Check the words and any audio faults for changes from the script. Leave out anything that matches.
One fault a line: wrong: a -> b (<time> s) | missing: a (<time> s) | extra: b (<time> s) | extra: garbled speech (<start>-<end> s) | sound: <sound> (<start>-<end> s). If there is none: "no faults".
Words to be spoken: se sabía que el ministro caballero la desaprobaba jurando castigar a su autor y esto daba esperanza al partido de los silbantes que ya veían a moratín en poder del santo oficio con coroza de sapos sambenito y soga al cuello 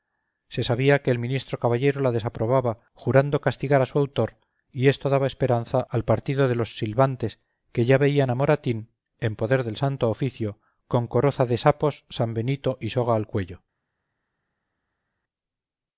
no faults